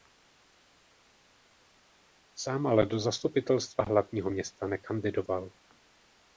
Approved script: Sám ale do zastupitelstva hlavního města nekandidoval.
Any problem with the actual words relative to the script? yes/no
no